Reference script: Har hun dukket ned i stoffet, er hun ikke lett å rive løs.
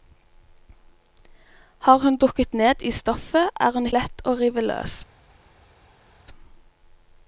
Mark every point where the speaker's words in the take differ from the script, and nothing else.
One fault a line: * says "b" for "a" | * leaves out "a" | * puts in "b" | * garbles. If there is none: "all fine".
* leaves out "ikke"